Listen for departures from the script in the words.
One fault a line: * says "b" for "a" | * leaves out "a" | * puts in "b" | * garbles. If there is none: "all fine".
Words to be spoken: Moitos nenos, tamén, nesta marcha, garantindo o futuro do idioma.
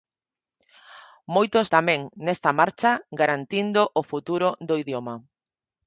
* leaves out "nenos"